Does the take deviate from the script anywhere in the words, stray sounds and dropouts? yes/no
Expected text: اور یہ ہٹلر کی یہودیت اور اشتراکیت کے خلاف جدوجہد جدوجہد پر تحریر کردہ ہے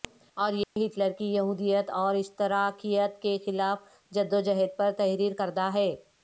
yes